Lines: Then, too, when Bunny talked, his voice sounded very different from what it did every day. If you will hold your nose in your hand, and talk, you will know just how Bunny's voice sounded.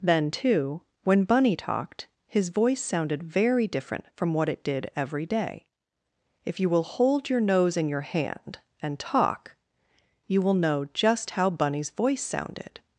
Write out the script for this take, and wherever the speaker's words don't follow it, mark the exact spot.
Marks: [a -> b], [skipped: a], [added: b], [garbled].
Then, too, when Bunny talked, his voice sounded very different from what it did every day. If you will hold your nose in your hand, and talk, you will know just how Bunny's voice sounded.